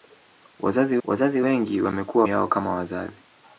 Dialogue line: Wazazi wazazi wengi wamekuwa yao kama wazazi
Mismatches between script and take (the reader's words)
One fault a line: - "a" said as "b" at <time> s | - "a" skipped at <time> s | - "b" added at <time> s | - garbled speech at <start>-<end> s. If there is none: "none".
none